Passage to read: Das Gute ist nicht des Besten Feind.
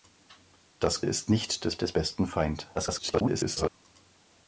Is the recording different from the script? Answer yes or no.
yes